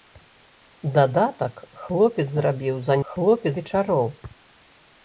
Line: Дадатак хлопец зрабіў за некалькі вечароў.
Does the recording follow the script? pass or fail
fail